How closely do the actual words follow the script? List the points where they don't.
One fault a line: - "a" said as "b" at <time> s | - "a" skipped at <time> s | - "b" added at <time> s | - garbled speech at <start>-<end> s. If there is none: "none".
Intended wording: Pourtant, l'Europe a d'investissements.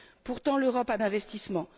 none